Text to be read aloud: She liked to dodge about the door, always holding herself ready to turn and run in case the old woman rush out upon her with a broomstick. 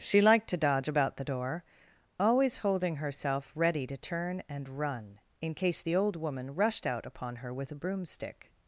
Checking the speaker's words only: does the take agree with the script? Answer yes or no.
no